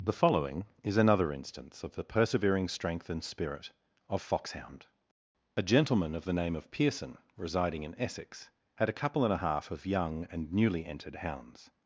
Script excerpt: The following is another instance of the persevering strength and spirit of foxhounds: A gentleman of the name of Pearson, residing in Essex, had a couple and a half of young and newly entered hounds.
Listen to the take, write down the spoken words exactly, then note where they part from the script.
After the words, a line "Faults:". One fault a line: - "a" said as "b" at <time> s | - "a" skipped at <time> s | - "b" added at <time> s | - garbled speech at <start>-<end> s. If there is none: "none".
The following is another instance of the persevering strength and spirit of foxhound: A gentleman of the name of Pearson, residing in Essex, had a couple and a half of young and newly entered hounds.
Faults:
- "foxhounds" said as "foxhound" at 4.2 s